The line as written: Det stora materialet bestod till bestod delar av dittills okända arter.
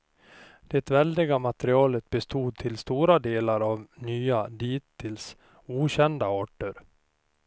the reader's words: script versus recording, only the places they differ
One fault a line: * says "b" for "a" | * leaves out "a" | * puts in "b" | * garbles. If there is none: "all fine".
* says "väldiga" for "stora"
* says "stora" for "bestod"
* puts in "nya"